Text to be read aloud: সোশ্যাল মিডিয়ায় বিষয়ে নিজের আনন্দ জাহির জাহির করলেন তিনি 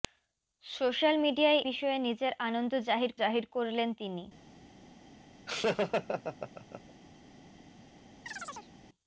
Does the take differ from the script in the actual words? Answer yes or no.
no